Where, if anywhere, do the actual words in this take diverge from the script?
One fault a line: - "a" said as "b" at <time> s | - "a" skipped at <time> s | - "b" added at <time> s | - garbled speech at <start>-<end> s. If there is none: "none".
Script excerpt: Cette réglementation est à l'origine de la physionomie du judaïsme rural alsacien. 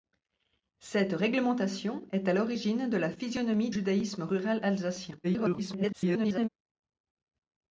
- "du" skipped at 3.7 s
- garbled speech at 5.2-6.5 s